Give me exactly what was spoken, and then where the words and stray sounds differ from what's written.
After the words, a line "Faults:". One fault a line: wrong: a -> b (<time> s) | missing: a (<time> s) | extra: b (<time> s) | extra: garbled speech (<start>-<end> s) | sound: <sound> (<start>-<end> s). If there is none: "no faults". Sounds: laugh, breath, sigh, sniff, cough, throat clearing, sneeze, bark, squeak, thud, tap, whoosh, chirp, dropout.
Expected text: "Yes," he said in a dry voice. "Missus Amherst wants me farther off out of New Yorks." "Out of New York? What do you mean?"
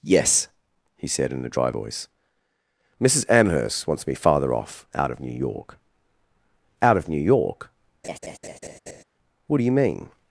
"Yes," he said in a dry voice. "Missus Amherst wants me farther off out of New York." "Out of New York? What do you mean?"
Faults:
wrong: Yorks -> York (5.3 s)
sound: laugh (8.0-9.0 s)